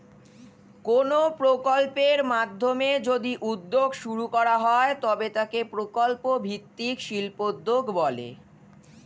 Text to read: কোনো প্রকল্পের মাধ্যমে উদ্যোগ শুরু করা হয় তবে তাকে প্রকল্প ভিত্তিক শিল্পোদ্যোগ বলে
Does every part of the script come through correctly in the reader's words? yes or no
no